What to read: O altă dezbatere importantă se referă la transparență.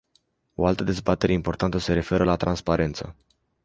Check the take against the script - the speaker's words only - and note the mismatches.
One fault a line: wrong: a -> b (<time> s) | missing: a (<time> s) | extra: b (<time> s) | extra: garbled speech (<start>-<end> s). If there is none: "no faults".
no faults